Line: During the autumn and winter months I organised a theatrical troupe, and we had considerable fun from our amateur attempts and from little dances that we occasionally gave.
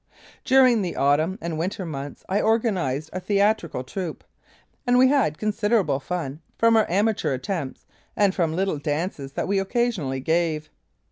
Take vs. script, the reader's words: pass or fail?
pass